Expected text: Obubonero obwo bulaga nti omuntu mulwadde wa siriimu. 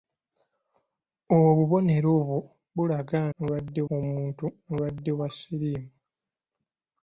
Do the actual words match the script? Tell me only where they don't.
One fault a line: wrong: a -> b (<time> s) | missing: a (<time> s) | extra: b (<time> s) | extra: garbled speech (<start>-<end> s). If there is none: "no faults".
wrong: nti -> mulwadde (3.3 s)